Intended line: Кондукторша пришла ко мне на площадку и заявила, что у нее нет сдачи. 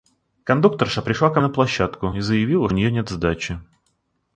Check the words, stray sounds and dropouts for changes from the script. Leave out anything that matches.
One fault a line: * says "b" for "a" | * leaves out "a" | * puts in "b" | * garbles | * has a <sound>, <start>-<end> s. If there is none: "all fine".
* leaves out "мне"
* leaves out "что"